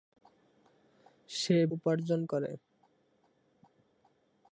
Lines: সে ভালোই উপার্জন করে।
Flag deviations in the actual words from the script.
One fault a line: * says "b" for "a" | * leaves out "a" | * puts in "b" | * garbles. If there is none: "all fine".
* leaves out "ভালোই"